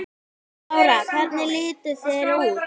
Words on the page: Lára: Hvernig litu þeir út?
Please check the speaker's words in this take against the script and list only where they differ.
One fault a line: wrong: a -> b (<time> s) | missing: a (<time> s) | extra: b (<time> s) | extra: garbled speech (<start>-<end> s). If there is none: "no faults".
no faults